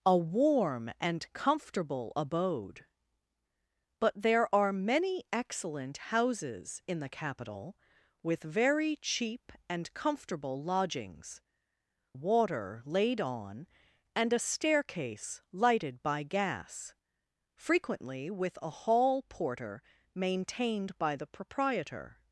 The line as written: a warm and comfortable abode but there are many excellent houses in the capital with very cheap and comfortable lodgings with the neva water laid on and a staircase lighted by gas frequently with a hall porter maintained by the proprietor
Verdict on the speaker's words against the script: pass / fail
fail